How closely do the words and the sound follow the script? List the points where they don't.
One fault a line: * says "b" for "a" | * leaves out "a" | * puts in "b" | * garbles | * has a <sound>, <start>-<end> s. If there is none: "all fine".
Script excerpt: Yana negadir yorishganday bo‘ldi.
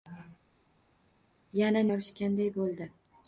* leaves out "negadir"